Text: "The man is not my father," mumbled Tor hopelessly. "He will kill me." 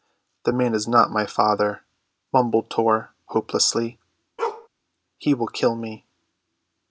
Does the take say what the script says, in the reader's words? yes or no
yes